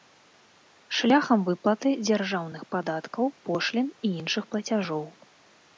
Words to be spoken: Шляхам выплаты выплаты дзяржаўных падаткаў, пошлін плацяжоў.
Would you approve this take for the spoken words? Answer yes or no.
no